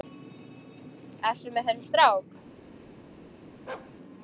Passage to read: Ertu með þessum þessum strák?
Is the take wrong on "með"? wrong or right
right